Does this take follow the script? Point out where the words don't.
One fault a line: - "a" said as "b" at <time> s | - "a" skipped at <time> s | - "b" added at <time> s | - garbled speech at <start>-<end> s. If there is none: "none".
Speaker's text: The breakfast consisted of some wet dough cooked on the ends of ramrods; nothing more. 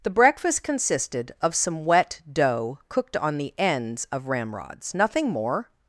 none